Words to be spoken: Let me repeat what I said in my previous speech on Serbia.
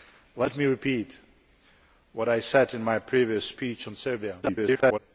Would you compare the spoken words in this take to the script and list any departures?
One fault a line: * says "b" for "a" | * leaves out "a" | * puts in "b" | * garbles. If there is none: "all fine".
* garbles